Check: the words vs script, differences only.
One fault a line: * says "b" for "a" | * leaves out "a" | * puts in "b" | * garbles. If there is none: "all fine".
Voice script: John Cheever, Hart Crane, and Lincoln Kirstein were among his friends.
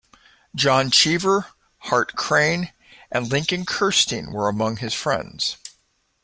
all fine